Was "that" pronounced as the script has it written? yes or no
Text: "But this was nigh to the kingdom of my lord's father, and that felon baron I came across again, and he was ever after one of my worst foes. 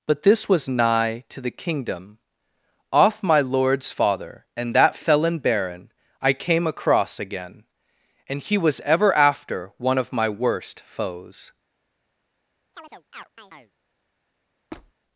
yes